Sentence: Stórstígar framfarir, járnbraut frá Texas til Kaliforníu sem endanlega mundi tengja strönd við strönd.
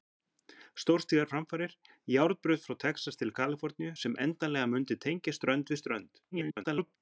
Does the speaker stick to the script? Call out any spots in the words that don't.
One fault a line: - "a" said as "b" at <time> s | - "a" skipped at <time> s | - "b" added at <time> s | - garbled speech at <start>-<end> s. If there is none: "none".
- garbled speech at 6.3-7.0 s